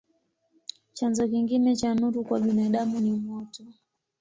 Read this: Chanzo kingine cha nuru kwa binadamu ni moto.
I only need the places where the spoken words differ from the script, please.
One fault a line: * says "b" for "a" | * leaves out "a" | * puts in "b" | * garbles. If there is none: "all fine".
all fine